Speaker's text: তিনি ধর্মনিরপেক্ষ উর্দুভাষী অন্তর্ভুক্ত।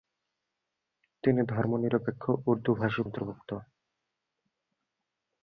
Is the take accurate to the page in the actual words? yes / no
yes